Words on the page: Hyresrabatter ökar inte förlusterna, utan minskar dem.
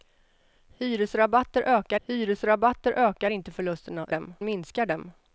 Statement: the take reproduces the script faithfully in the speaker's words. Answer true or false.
false